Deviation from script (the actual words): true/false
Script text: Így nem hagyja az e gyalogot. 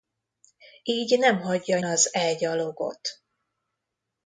false